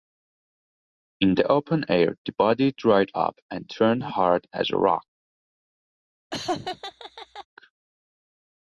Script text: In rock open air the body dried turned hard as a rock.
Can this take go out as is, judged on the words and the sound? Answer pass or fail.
fail